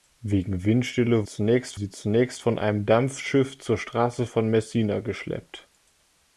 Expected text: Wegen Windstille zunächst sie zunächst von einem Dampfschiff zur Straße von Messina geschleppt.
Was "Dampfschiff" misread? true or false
false